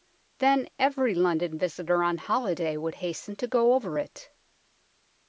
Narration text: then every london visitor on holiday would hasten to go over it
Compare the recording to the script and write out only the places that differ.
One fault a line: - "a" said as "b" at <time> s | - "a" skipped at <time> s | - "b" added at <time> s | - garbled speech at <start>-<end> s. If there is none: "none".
none